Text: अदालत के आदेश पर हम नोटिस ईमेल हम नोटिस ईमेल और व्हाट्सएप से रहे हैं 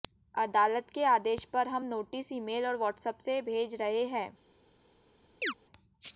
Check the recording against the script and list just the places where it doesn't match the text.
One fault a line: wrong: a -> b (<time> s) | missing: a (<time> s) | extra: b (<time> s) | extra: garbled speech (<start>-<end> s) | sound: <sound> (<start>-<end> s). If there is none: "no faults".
missing: हम नोटिस ईमेल (2.7 s)
extra: भेज (3.4 s)
sound: chirp (5.4-5.5 s)